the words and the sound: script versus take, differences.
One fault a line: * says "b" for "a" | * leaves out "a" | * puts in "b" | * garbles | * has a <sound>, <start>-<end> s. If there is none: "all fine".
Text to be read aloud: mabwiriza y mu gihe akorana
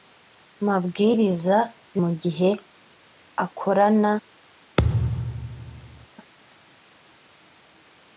* has a thud, 4.8-6.1 s